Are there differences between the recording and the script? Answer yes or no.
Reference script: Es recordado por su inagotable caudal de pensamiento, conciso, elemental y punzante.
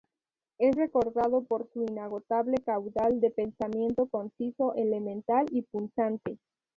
no